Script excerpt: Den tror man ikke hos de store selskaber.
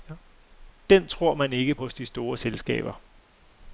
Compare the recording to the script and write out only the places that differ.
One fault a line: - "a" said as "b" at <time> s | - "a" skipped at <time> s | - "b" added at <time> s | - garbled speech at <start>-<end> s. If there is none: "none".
none